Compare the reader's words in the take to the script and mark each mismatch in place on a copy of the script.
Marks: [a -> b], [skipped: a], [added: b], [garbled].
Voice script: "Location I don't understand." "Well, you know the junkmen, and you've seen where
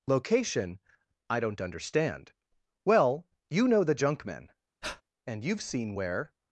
"Location I don't understand." "Well, you know the junkmen, and you've seen where